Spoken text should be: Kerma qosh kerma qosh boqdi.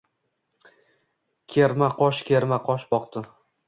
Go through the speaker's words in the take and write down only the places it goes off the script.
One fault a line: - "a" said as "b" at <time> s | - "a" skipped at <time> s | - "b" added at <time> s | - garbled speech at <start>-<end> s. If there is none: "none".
none